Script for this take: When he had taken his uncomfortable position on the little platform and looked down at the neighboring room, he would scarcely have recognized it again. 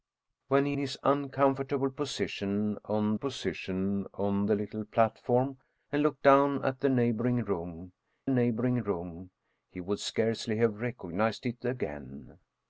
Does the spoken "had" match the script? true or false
false